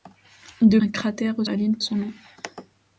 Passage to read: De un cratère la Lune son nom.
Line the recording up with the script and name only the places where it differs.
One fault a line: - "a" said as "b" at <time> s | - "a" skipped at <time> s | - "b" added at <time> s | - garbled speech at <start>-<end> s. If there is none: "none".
none